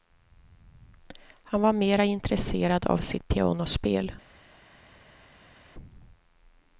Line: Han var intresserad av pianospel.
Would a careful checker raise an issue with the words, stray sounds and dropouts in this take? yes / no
yes